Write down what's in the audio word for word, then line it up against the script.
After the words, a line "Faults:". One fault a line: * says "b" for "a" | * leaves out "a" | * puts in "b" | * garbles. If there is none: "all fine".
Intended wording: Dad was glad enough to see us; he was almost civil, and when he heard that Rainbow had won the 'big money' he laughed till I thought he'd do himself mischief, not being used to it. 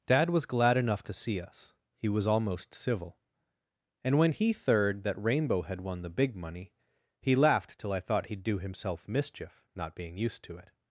Dad was glad enough to see us; he was almost civil, and when he third that Rainbow had won the 'big money' he laughed till I thought he'd do himself mischief, not being used to it.
Faults:
* says "third" for "heard"